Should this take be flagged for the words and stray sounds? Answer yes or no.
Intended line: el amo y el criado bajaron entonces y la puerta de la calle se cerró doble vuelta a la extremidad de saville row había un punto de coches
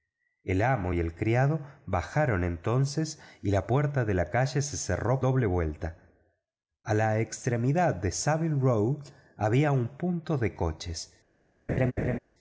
yes